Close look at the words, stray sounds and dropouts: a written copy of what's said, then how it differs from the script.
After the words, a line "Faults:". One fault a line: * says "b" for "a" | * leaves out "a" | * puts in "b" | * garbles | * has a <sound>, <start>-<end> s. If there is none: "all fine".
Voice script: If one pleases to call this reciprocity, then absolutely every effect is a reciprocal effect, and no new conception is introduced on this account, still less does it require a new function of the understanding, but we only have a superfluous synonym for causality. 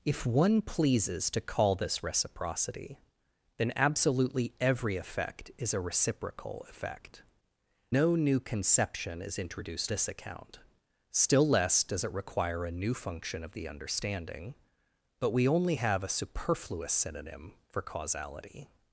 If one pleases to call this reciprocity, then absolutely every effect is a reciprocal effect, no new conception is introduced this account, still less does it require a new function of the understanding, but we only have a superfluous synonym for causality.
Faults:
* leaves out "and"
* leaves out "on"